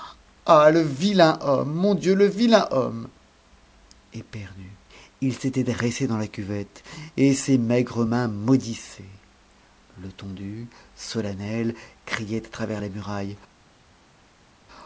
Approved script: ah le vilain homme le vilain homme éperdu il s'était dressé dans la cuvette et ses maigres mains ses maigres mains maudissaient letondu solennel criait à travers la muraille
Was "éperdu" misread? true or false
false